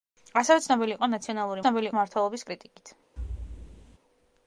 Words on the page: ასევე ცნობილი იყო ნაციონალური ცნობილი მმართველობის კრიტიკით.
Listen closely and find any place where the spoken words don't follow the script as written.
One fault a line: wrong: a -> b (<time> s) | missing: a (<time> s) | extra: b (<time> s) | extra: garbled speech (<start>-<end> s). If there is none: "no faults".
no faults